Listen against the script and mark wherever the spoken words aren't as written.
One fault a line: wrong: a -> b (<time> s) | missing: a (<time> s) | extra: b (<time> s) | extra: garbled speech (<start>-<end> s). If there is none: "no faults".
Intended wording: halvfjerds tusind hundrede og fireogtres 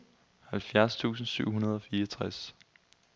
extra: syv (1.3 s)